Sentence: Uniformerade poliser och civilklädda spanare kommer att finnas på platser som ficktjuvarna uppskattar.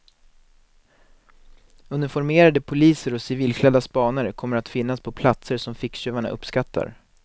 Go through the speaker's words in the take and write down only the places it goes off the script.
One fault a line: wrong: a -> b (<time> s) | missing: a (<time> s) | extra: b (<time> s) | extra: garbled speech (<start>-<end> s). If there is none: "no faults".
no faults